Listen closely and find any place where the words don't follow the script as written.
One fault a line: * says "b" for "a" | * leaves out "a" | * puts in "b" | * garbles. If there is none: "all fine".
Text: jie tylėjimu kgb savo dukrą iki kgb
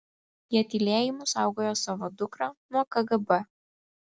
* says "saugojo" for "kgb"
* says "nuo" for "iki"